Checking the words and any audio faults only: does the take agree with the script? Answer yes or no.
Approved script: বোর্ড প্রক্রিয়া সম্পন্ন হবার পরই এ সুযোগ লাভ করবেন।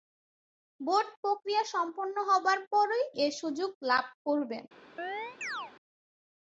no